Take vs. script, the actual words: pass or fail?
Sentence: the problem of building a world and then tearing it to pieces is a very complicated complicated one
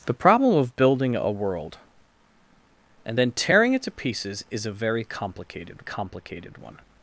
pass